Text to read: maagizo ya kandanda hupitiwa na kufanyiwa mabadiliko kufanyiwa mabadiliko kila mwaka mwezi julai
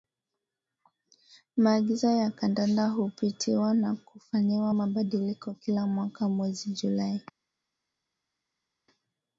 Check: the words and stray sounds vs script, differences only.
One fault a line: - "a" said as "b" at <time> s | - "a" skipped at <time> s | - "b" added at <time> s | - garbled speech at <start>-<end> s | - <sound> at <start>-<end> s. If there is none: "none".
- "kufanyiwa mabadiliko" skipped at 5.5 s